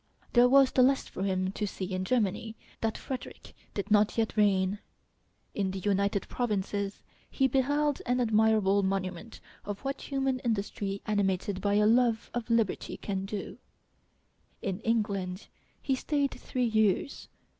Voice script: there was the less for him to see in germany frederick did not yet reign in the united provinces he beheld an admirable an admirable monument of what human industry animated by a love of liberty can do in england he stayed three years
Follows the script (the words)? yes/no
no